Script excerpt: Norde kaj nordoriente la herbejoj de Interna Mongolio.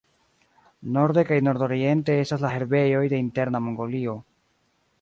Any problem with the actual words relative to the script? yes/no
yes